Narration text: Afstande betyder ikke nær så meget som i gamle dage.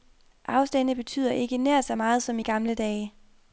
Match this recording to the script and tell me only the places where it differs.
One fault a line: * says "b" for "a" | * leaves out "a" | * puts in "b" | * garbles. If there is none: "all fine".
all fine